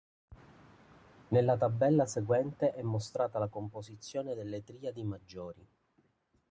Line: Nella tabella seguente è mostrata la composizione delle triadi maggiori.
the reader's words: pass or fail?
pass